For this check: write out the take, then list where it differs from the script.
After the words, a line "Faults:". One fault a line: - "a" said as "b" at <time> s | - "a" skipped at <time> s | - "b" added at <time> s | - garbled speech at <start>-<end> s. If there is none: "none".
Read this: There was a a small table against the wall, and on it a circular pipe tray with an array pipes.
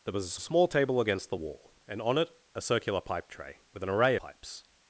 There was a a small table against the wall, and on it a circular pipe tray with an array pipes.
Faults:
none